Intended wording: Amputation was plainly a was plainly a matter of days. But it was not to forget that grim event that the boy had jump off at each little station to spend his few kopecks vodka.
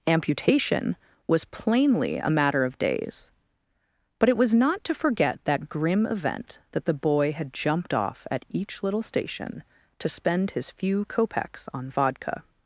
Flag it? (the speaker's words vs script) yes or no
yes